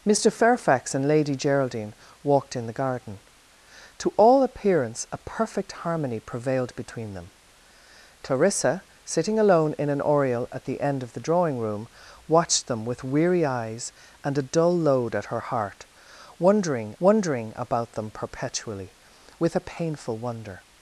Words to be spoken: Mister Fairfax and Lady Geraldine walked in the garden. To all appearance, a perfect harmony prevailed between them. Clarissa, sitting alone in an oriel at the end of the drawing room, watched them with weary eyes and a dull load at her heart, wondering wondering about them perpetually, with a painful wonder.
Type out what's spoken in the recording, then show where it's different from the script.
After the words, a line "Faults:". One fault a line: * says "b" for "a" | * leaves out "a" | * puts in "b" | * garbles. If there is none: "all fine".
Mister Fairfax and Lady Geraldine walked in the garden. To all appearance, a perfect harmony prevailed between them. Clarissa, sitting alone in an oriel at the end of the drawing room, watched them with weary eyes and a dull load at her heart, wondering wondering about them perpetually, with a painful wonder.
Faults:
all fine